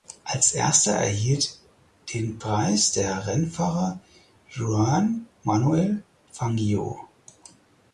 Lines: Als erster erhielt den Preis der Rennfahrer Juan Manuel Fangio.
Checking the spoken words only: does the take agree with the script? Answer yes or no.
yes